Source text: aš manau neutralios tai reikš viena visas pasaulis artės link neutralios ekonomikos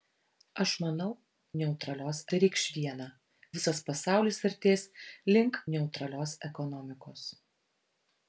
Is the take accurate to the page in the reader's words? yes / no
yes